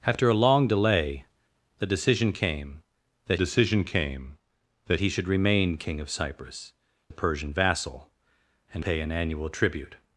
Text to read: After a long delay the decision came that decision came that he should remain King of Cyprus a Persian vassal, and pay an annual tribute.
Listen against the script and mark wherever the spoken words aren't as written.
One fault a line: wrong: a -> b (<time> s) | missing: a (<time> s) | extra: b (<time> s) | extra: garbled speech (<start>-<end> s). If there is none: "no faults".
no faults